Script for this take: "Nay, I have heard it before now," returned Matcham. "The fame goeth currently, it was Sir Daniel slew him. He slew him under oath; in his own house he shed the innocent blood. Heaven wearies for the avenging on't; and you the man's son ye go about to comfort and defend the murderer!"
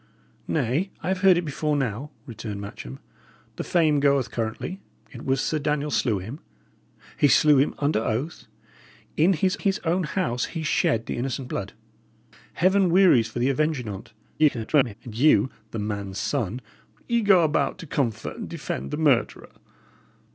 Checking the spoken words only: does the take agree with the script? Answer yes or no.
no